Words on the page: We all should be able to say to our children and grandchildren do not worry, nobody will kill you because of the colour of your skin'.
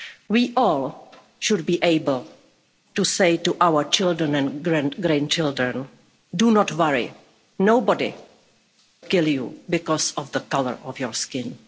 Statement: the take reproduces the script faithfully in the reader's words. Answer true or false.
false